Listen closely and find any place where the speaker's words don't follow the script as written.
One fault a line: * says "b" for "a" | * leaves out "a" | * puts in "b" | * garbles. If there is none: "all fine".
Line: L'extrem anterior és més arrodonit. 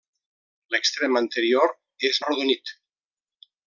* leaves out "més"